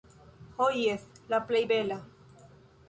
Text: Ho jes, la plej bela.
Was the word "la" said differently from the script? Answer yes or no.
no